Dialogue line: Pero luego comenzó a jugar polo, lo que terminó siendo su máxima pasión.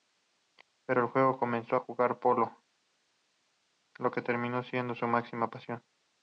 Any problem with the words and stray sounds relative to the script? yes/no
no